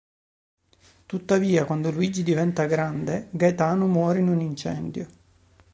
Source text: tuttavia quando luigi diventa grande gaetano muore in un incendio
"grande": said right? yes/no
yes